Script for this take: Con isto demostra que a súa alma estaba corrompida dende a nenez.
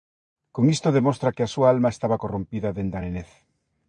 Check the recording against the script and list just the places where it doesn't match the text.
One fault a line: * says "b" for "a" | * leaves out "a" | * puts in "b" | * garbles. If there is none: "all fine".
all fine